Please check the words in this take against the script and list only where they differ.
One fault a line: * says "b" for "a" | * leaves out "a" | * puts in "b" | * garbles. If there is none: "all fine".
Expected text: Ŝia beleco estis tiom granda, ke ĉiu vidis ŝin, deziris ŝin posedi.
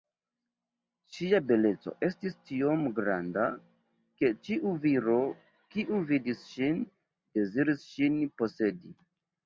* puts in "viro kiu"